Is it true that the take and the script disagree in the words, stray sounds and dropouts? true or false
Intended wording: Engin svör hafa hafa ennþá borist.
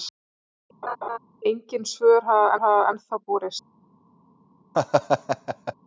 true